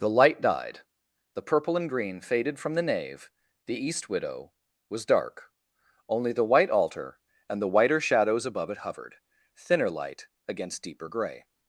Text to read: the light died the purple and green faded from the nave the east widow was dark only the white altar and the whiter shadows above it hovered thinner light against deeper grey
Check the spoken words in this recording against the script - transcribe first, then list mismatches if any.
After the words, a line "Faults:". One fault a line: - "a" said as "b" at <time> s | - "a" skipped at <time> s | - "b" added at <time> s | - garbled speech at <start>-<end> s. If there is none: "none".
the light died the purple and green faded from the nave the east widow was dark only the white altar and the whiter shadows above it hovered thinner light against deeper grey
Faults:
none